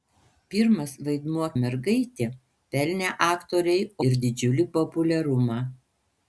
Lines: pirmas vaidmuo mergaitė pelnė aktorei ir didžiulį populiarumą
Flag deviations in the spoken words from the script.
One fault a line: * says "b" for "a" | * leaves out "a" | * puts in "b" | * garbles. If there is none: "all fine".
all fine